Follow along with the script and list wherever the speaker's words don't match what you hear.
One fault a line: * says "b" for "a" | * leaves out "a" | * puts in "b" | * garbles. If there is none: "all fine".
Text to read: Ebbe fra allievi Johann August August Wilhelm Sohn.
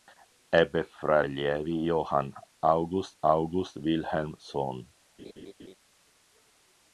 all fine